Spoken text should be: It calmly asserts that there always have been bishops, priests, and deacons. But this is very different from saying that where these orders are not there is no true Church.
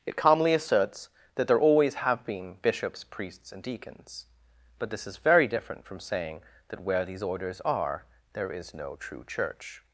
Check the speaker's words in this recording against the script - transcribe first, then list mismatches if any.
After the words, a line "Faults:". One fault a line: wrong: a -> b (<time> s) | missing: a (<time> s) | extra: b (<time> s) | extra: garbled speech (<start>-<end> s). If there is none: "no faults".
It calmly asserts that there always have been bishops, priests, and deacons. But this is very different from saying that where these orders are there is no true Church.
Faults:
missing: not (8.0 s)